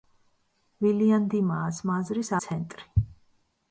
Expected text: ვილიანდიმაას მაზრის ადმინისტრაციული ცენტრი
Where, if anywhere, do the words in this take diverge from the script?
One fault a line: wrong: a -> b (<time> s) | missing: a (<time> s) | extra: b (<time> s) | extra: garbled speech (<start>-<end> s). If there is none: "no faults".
missing: ადმინისტრაციული (2.3 s)